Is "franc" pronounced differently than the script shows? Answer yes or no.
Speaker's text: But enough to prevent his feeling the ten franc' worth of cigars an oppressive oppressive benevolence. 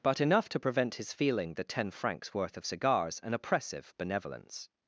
yes